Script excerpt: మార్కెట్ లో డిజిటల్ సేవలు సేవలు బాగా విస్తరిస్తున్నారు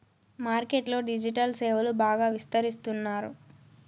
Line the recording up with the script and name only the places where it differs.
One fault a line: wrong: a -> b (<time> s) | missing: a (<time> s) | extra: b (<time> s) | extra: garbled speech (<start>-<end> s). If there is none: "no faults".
missing: సేవలు (1.9 s)